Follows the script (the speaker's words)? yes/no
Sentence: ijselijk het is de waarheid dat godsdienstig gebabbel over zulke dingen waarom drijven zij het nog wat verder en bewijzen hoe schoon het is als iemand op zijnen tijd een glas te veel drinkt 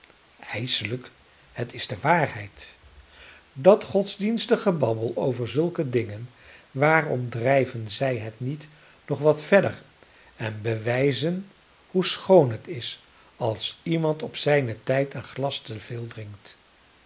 no